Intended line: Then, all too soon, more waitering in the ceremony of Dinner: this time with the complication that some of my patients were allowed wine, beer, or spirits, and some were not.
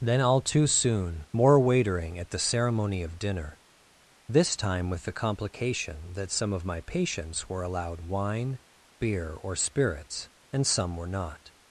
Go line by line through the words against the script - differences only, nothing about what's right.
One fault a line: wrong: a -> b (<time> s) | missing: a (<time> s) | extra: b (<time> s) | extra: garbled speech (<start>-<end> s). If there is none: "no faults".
wrong: in -> at (2.2 s)